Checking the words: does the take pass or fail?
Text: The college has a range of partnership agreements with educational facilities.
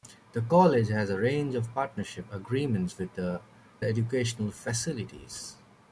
pass